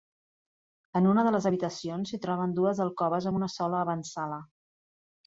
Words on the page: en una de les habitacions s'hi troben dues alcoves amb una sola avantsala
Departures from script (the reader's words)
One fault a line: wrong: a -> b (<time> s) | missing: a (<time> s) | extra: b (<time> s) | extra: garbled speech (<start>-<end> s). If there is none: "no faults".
no faults